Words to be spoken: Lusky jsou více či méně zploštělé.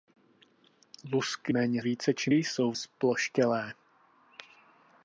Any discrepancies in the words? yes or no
yes